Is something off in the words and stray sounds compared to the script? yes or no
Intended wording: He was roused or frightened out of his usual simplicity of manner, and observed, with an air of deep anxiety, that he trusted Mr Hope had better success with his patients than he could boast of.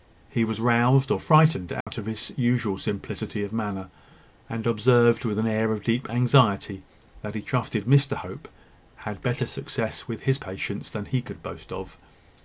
yes